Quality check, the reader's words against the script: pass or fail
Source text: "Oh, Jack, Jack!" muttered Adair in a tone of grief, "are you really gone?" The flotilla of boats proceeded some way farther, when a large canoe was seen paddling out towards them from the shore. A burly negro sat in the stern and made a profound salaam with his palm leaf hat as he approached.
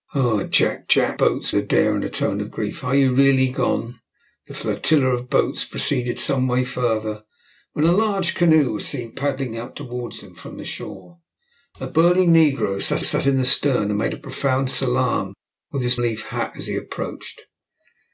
fail